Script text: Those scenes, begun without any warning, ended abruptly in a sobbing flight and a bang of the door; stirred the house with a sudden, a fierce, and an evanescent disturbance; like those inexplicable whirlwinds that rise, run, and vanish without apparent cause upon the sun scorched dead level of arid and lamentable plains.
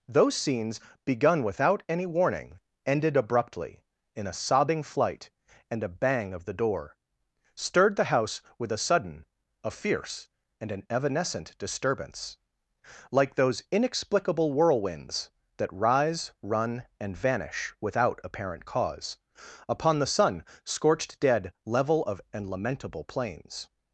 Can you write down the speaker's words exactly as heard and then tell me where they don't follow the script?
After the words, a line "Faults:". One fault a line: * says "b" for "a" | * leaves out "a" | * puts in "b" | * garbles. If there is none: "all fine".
Those scenes, begun without any warning, ended abruptly in a sobbing flight and a bang of the door; stirred the house with a sudden, a fierce, and an evanescent disturbance; like those inexplicable whirlwinds that rise, run, and vanish without apparent cause upon the sun scorched dead level of and lamentable plains.
Faults:
* leaves out "arid"